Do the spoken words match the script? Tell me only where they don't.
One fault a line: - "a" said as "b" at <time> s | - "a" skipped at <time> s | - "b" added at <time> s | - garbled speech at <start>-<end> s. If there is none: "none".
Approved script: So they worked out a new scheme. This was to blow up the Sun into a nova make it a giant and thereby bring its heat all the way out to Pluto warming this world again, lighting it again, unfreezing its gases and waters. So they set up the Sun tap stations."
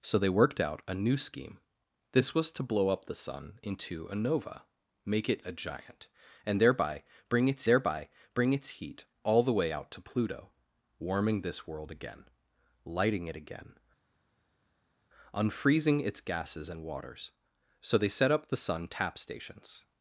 - "thereby bring its" added at 7.7 s